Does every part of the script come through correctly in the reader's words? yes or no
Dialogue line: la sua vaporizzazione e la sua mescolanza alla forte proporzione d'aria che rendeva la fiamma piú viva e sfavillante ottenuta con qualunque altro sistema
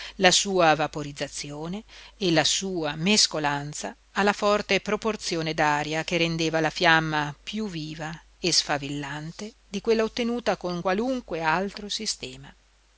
no